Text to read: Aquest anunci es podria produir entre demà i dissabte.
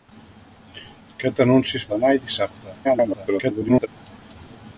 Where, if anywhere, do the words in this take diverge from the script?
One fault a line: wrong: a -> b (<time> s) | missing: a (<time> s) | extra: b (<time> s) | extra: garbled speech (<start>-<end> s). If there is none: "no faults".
missing: podria produir entre (1.9 s)
extra: garbled speech (2.8-3.9 s)